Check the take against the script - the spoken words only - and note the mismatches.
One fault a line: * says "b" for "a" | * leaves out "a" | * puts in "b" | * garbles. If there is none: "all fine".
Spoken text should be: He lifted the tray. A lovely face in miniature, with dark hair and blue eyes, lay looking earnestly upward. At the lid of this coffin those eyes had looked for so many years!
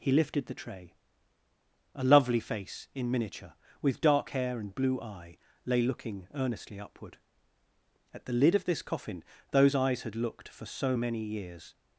* says "eye" for "eyes"